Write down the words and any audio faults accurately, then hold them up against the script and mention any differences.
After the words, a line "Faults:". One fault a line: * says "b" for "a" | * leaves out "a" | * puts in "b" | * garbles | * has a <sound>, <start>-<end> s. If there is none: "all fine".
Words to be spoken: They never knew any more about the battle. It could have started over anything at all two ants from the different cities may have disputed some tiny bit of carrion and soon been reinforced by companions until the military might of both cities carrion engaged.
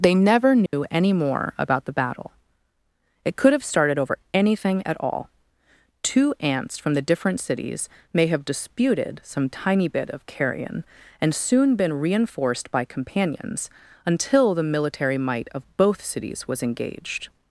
They never knew any more about the battle. It could have started over anything at all two ants from the different cities may have disputed some tiny bit of carrion and soon been reinforced by companions until the military might of both cities was engaged.
Faults:
* has a dropout, 0.7-0.7 s
* says "was" for "carrion"